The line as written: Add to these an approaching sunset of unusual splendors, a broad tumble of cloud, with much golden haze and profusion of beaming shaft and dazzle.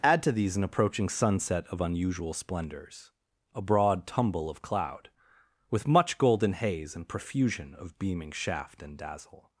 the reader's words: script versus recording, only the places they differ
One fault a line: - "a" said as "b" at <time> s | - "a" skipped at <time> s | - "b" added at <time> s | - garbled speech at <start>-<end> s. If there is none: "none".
none